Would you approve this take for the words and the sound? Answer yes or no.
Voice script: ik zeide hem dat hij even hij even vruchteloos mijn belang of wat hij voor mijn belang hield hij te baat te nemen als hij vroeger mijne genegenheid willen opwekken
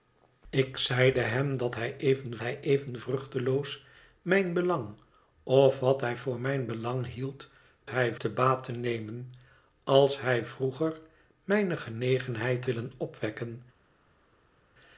yes